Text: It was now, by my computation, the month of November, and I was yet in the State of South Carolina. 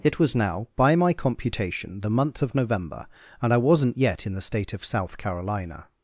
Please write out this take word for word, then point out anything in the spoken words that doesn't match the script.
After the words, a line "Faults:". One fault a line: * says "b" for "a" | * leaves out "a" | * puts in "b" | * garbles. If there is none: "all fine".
It was now, by my computation, the month of November, and I wasn't yet in the State of South Carolina.
Faults:
* says "wasn't" for "was"